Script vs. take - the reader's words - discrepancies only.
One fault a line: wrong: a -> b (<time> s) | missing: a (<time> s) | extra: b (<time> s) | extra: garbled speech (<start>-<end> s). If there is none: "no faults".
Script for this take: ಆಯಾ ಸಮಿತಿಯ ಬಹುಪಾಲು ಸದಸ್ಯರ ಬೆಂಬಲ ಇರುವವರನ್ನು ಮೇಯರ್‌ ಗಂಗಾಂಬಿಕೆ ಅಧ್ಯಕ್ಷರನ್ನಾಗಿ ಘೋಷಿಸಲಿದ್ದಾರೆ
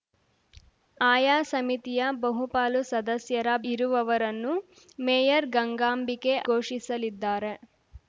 missing: ಬೆಂಬಲ (3.5 s)
missing: ಅಧ್ಯಕ್ಷರನ್ನಾಗಿ (6.3 s)